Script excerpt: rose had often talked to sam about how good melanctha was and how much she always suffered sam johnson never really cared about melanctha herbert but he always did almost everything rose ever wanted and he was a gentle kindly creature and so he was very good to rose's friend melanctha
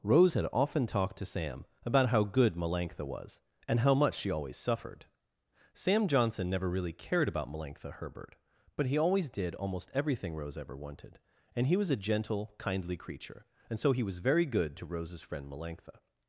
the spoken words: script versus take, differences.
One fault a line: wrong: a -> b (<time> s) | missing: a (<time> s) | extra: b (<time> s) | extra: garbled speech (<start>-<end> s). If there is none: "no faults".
no faults